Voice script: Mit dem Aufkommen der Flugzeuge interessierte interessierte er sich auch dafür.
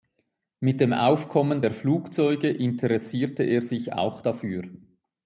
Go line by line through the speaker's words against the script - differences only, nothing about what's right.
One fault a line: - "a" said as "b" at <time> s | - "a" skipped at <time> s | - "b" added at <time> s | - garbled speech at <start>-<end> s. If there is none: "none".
- "interessierte" skipped at 3.4 s